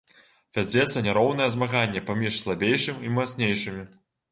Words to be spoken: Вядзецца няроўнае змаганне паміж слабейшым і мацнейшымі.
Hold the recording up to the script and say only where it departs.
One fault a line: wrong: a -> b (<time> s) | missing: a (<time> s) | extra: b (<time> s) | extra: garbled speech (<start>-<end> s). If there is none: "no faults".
no faults